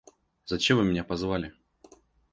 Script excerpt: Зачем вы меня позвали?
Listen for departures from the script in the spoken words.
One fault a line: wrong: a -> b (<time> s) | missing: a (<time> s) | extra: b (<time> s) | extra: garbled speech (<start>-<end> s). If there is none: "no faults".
no faults